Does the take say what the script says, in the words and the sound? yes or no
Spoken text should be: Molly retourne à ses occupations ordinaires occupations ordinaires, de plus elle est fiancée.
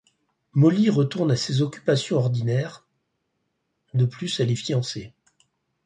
no